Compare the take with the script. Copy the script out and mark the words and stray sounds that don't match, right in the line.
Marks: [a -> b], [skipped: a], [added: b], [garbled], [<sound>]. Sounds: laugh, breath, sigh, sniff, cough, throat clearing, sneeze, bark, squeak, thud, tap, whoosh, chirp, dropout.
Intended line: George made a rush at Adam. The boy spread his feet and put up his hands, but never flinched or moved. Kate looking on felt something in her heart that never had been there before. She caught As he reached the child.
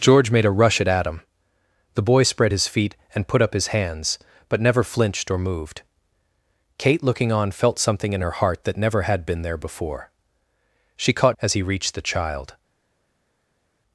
George made a rush at Adam. The boy spread his feet and put up his hands, but never flinched or moved. Kate looking on felt something in her heart that never had been there before. She caught As he reached the child.